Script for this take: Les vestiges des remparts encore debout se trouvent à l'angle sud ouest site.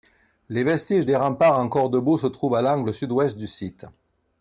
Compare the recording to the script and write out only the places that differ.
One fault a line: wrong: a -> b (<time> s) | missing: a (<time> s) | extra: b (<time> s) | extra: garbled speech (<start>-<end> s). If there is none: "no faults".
extra: du (3.4 s)